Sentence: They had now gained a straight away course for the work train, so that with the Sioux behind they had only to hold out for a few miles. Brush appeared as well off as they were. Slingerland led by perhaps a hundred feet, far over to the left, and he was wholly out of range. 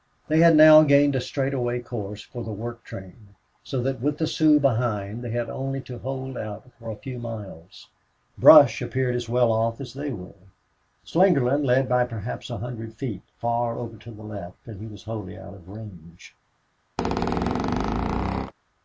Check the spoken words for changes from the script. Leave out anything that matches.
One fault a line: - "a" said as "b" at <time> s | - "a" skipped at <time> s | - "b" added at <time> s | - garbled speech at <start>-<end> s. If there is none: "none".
none